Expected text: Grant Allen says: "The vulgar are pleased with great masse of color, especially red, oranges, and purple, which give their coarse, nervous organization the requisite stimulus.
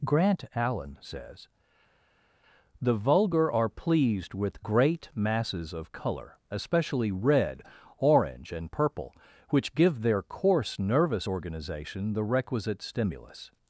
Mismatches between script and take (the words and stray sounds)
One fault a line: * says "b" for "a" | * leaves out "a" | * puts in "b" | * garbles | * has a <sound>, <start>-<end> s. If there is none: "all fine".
* says "masses" for "masse"
* says "orange" for "oranges"